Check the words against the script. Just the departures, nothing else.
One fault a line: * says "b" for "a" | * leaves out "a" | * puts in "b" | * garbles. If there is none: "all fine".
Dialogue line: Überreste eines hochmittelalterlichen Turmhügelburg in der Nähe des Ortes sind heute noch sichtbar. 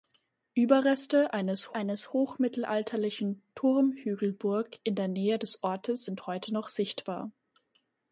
* puts in "eines"